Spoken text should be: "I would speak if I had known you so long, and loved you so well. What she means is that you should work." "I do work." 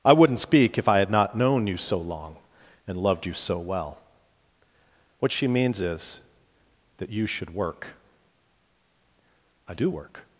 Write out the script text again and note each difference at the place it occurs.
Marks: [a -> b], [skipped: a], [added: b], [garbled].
"I [would -> wouldn't] speak if I had [added: not] known you so long, and loved you so well. What she means is that you should work." "I do work."